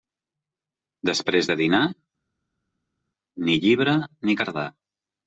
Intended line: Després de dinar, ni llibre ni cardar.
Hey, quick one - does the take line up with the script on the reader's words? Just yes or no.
yes